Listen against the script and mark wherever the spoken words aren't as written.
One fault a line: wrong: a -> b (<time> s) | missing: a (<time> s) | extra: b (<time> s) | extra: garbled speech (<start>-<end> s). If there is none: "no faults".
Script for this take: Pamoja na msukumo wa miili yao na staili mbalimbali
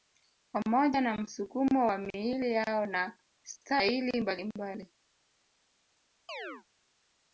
no faults